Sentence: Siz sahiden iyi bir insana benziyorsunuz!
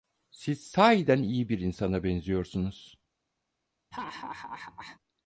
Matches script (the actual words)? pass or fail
pass